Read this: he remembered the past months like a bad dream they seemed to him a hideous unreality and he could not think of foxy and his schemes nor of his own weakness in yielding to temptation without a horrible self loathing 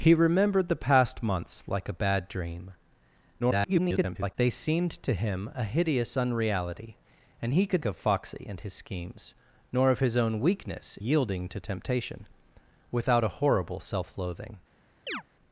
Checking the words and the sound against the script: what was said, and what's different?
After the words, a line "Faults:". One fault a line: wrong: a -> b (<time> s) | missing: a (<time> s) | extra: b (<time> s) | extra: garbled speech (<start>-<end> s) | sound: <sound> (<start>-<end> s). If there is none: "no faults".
he remembered the past months like a bad dream [garbled] they seemed to him a hideous unreality and he could of foxy and his schemes nor of his own weakness yielding to temptation without a horrible self loathing
Faults:
extra: garbled speech (3.4-4.4 s)
missing: not think (7.8 s)
missing: in (11.0 s)
sound: chirp (15.1-15.2 s)